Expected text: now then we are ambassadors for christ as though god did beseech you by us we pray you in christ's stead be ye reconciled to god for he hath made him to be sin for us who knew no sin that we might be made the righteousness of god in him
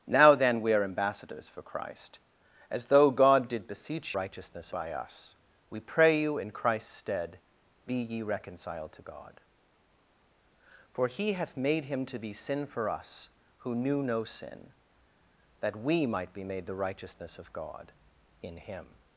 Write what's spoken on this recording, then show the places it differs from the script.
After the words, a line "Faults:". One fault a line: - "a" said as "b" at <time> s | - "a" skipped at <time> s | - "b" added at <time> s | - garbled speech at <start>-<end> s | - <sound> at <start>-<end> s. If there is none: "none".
now then we are ambassadors for christ as though god did beseech righteousness by us we pray you in christ's stead be ye reconciled to god for he hath made him to be sin for us who knew no sin that we might be made the righteousness of god in him
Faults:
- "you" said as "righteousness" at 4.2 s